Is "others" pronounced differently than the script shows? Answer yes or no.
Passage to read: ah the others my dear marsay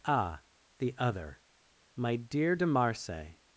yes